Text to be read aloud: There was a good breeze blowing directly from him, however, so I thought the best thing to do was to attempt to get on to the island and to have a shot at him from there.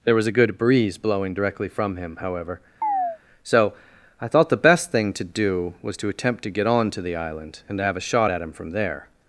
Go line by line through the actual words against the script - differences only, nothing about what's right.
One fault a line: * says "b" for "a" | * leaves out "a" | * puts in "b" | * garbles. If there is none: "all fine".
all fine